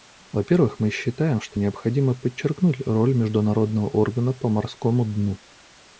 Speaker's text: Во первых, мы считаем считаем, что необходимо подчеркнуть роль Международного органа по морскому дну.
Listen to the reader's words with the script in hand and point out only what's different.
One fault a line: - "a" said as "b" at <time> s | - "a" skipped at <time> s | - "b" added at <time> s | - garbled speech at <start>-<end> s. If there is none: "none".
- "считаем" skipped at 1.4 s